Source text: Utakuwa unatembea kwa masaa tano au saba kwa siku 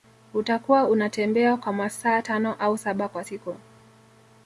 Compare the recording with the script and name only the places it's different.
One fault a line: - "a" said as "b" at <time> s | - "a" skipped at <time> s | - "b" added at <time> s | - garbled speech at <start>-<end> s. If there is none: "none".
none